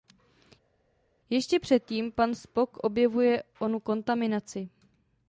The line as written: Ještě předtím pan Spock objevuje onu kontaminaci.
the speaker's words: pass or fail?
pass